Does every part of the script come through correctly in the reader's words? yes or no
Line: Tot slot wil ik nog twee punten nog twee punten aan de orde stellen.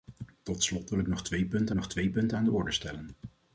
yes